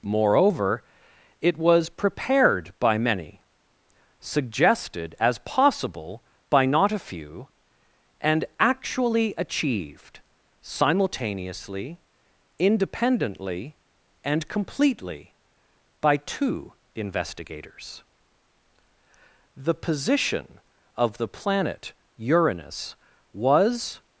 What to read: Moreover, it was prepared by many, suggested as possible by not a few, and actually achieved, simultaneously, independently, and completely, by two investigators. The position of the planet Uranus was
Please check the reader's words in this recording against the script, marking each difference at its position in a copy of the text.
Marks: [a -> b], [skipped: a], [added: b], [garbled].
Moreover, it was prepared by many, suggested as possible by not a few, and actually achieved, simultaneously, independently, and completely, by two investigators. The position of the planet Uranus was